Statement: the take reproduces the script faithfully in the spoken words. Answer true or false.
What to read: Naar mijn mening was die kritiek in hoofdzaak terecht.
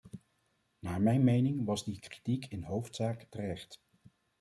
true